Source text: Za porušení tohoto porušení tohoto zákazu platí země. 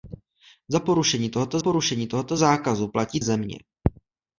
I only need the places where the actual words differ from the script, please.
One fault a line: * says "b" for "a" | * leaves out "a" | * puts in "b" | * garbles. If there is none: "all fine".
all fine